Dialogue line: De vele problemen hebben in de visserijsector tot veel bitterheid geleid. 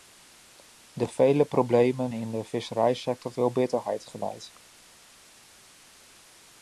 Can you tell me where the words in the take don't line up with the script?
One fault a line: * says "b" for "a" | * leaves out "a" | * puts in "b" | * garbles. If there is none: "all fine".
* leaves out "hebben"
* leaves out "tot"